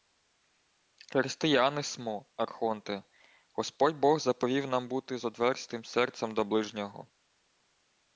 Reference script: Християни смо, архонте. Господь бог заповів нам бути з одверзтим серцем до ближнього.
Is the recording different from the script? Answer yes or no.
no